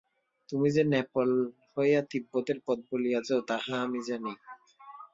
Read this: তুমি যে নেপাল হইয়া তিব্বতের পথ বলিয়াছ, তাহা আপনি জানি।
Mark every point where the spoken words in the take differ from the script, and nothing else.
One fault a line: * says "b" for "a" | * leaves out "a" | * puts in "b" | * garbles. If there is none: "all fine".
* says "আমি" for "আপনি"